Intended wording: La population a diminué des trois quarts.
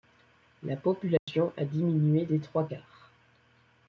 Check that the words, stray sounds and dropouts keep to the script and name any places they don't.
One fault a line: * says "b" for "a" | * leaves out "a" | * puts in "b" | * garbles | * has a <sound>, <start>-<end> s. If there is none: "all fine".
* has a dropout, 1.2-1.3 s